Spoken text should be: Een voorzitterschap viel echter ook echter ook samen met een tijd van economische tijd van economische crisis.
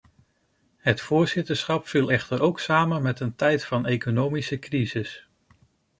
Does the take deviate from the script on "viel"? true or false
false